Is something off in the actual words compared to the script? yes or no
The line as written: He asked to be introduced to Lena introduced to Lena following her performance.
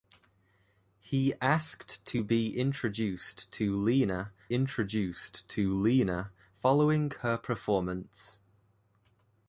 no